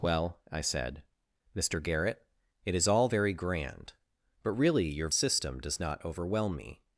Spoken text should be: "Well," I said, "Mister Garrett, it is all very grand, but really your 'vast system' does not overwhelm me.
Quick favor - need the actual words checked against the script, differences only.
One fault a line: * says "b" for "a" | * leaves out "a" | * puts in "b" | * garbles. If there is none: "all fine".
* leaves out "vast"